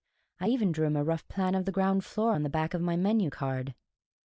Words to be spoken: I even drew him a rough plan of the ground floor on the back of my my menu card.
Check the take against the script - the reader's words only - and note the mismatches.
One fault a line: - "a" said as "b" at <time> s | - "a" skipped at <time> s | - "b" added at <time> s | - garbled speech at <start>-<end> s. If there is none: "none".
- "my" skipped at 2.9 s